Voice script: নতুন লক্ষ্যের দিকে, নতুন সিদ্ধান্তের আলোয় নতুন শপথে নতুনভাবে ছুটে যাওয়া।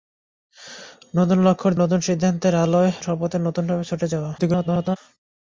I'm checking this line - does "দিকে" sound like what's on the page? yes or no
no